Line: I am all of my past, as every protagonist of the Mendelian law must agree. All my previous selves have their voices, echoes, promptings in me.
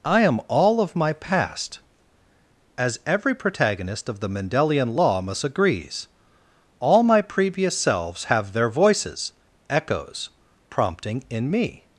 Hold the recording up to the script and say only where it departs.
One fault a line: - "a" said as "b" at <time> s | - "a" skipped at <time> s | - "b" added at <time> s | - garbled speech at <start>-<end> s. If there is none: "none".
- "agree" said as "agrees" at 5.4 s
- "promptings" said as "prompting" at 10.7 s